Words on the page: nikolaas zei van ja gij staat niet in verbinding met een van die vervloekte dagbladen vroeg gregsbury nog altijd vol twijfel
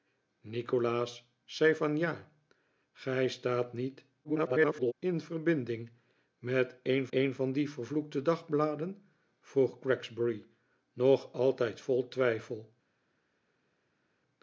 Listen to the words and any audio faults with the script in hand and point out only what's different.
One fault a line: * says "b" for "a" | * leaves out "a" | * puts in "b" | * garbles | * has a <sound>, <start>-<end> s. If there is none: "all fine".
* garbles
* puts in "een"